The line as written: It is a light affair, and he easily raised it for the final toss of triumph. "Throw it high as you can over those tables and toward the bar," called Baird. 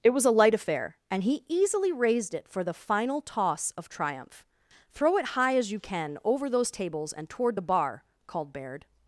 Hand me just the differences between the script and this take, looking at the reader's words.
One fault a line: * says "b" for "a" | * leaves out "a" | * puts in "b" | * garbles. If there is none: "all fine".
* says "was" for "is"